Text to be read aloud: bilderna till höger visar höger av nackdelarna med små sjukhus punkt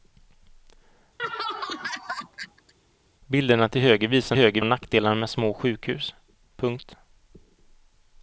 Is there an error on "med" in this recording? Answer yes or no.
no